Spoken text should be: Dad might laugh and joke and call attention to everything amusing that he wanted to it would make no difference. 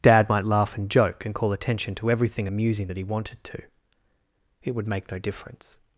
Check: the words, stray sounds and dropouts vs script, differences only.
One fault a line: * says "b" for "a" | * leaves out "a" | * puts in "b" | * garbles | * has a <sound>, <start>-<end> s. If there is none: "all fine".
all fine